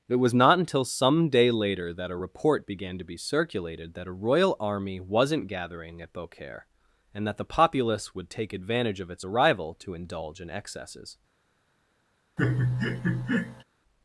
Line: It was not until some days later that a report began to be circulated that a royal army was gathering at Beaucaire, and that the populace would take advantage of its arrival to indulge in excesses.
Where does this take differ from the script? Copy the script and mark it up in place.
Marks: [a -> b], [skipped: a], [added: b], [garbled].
It was not until some [days -> day] later that a report began to be circulated that a royal army [was -> wasn't] gathering at Beaucaire, and that the populace would take advantage of its arrival to indulge in excesses.